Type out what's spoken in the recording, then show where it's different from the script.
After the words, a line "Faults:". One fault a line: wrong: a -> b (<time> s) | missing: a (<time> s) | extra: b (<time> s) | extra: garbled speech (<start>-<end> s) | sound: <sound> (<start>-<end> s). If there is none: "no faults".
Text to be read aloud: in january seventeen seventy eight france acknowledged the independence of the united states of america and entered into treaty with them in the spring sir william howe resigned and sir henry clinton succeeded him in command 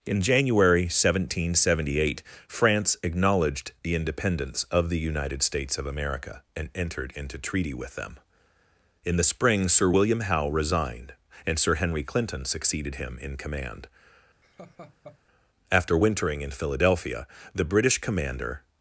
in january seventeen seventy eight france acknowledged the independence of the united states of america and entered into treaty with them in the spring sir william howe resigned and sir henry clinton succeeded him in command after wintering in philadelphia the british commander
Faults:
sound: laugh (14.4-15.2 s)
extra: after wintering in philadelphia the british commander (15.7 s)